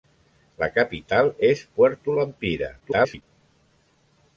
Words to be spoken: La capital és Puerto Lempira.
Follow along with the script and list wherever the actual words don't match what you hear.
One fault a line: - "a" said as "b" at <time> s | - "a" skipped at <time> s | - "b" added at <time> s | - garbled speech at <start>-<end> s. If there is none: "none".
- garbled speech at 2.8-3.2 s